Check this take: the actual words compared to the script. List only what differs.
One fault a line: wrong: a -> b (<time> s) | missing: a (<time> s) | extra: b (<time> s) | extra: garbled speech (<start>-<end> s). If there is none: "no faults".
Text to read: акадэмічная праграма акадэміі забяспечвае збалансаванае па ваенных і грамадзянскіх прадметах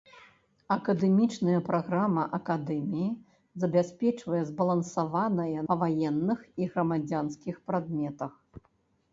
no faults